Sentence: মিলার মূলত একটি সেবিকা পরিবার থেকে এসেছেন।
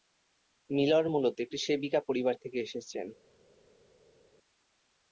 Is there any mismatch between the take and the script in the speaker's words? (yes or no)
no